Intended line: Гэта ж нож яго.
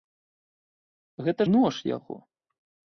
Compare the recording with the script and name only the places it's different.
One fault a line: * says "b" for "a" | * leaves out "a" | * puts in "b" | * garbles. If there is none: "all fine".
* leaves out "ж"